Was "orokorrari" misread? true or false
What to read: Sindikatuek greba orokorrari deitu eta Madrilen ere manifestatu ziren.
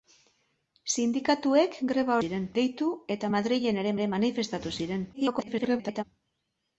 true